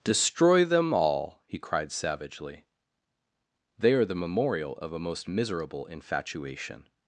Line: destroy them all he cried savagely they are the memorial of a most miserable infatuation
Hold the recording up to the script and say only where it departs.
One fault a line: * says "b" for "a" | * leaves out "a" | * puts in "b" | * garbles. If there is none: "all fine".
all fine